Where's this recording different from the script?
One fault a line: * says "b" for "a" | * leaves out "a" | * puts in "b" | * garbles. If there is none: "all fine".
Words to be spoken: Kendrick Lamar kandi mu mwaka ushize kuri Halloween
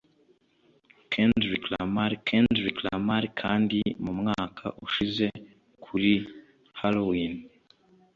* puts in "kendrick Lamar"